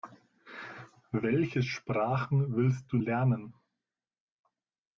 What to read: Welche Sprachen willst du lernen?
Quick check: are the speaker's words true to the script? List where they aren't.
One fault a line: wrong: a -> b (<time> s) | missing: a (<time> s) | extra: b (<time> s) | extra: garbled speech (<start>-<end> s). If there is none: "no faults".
no faults